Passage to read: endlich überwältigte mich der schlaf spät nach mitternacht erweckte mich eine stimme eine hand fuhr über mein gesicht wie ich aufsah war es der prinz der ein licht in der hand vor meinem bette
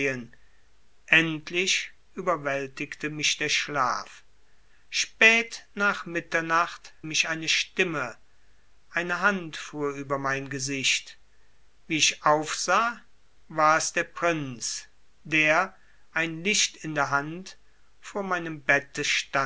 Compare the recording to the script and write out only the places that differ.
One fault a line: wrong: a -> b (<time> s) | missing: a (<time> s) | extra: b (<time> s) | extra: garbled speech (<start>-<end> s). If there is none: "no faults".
missing: erweckte (6.9 s)